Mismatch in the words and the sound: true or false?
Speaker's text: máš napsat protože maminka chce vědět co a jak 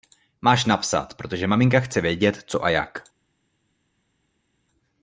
false